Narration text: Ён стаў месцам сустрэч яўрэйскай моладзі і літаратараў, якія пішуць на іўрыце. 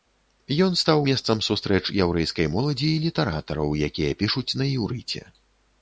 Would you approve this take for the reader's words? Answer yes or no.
yes